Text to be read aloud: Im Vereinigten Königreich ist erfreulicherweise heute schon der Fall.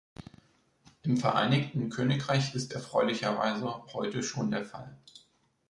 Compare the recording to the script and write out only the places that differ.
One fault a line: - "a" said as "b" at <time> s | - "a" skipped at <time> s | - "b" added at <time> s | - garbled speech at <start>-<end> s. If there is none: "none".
none